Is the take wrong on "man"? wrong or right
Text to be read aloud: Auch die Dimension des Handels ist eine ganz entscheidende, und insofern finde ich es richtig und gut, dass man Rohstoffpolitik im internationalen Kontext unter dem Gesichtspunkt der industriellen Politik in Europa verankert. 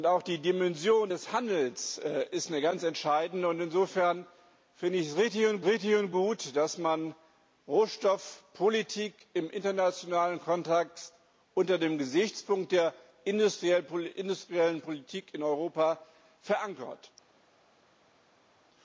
right